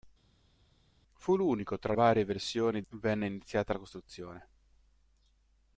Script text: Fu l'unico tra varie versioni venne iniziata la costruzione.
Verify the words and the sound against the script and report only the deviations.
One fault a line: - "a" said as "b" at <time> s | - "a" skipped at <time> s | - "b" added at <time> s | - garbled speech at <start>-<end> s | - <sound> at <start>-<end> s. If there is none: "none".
none